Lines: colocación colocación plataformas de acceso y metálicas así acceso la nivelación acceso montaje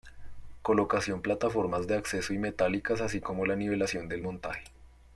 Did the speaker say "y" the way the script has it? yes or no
yes